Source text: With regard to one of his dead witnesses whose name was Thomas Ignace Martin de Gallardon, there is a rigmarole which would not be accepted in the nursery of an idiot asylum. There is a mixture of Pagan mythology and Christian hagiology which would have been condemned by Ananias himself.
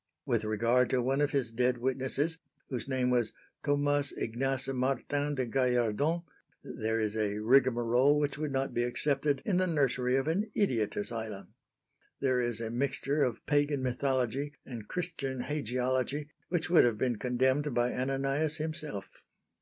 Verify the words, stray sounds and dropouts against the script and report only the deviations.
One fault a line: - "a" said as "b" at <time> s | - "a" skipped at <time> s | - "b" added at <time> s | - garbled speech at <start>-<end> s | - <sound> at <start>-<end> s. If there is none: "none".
none